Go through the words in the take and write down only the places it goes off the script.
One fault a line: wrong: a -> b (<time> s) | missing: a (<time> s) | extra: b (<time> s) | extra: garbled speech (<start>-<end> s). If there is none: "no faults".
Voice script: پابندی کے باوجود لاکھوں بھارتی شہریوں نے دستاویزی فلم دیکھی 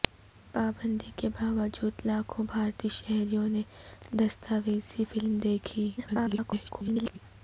extra: garbled speech (6.0-7.2 s)